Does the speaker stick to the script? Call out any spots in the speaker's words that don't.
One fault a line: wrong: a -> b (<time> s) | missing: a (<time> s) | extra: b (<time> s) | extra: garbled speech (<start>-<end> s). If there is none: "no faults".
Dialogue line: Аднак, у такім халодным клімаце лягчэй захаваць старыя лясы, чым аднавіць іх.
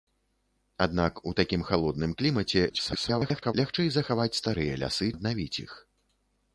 extra: garbled speech (2.7-3.5 s)
missing: чым (5.1 s)